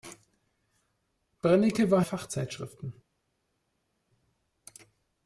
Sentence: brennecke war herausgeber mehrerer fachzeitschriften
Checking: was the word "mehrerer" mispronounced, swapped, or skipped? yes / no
yes